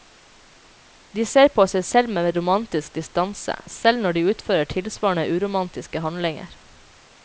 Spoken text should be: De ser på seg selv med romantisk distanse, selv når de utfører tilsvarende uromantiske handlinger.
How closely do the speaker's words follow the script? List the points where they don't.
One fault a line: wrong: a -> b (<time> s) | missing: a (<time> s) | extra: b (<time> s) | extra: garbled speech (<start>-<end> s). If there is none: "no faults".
no faults